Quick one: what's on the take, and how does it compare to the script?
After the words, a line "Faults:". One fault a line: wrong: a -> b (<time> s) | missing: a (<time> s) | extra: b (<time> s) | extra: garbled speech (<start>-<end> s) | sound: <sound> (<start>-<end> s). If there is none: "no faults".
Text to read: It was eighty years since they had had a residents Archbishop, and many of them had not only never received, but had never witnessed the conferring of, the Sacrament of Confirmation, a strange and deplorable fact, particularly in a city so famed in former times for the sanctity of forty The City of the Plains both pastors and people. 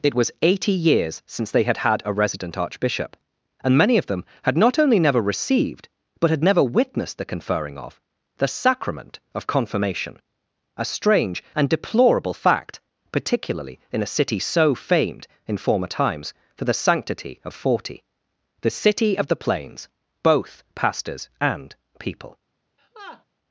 It was eighty years since they had had a resident Archbishop, and many of them had not only never received, but had never witnessed the conferring of, the Sacrament of Confirmation, a strange and deplorable fact, particularly in a city so famed in former times for the sanctity of forty The City of the Plains both pastors and people.
Faults:
wrong: residents -> resident (2.1 s)
sound: laugh (22.8-23.2 s)